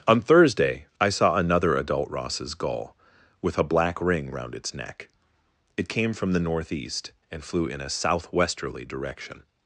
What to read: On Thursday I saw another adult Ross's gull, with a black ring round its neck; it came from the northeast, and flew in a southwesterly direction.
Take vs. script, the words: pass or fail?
pass